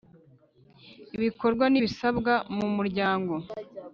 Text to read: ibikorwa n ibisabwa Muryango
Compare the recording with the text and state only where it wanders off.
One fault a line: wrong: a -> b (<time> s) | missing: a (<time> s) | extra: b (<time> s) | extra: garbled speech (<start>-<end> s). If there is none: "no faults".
extra: mu (2.6 s)